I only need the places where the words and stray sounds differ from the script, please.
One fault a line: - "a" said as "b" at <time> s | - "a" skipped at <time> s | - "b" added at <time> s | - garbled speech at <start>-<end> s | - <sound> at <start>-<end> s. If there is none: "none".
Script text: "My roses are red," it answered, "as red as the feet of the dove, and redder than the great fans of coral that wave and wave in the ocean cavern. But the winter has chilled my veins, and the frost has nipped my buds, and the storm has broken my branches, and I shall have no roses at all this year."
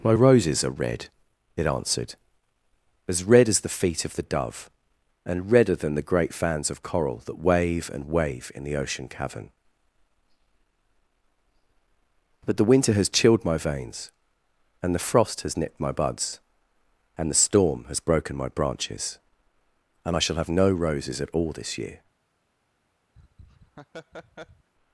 - laugh at 23.1-24.7 s